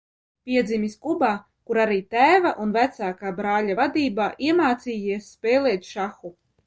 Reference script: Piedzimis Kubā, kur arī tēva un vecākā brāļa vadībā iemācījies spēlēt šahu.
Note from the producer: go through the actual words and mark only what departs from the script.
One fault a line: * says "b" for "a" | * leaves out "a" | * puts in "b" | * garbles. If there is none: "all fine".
all fine